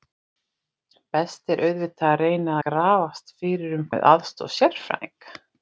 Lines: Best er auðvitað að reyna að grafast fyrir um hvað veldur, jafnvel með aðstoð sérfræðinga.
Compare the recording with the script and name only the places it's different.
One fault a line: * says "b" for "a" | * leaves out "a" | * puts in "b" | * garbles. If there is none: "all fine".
* leaves out "að"
* leaves out "hvað veldur jafnvel"